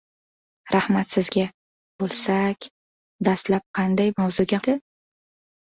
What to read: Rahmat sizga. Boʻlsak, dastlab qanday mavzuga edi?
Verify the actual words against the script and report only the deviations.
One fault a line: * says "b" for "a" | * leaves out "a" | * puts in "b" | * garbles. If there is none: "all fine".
all fine